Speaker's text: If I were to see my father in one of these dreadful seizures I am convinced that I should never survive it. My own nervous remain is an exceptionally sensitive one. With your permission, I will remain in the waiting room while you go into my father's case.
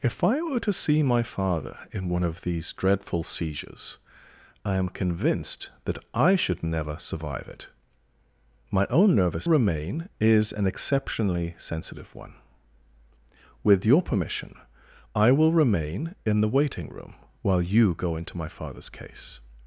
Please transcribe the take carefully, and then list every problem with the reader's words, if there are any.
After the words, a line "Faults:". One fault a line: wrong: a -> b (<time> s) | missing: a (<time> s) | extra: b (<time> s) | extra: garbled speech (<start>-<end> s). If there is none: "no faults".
If I were to see my father in one of these dreadful seizures I am convinced that I should never survive it. My own nervous remain is an exceptionally sensitive one. With your permission, I will remain in the waiting room while you go into my father's case.
Faults:
no faults